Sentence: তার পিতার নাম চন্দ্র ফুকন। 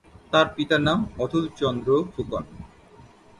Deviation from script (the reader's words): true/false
true